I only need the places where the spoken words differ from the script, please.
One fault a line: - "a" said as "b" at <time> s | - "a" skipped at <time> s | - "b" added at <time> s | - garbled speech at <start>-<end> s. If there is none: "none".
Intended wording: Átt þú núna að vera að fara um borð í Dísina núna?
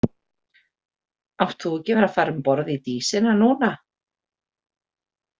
- "núna" said as "ekki" at 1.8 s